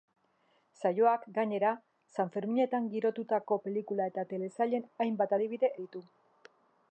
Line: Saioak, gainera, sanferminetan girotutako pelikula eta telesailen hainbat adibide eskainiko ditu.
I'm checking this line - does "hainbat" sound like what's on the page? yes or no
yes